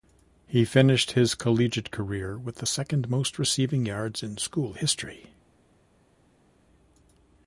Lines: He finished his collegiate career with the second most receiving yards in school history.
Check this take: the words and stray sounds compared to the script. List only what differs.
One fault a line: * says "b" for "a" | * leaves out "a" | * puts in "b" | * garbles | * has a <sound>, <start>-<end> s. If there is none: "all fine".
all fine